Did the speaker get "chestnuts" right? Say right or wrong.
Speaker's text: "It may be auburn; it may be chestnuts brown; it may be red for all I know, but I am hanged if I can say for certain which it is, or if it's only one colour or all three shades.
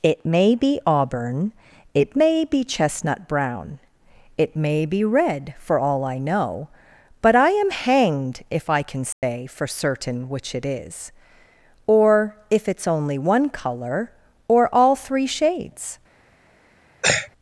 wrong